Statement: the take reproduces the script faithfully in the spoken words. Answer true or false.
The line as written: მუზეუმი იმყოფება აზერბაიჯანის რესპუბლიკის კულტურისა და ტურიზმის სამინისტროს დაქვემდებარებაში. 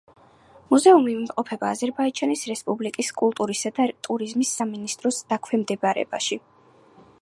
true